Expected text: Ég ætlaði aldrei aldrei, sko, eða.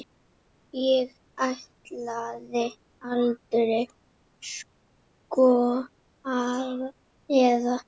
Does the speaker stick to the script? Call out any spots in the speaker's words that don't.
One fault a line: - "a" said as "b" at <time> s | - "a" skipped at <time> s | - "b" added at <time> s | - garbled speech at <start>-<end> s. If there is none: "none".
- "aldrei" skipped at 3.8 s